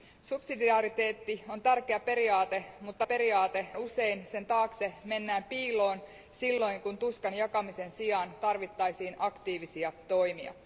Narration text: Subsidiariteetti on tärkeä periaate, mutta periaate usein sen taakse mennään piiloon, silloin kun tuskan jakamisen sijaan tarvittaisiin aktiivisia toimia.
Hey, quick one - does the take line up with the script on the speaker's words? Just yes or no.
yes